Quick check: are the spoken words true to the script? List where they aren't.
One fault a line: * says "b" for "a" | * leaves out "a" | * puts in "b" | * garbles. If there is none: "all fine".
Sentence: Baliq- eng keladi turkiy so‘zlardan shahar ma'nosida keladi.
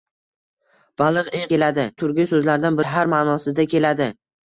all fine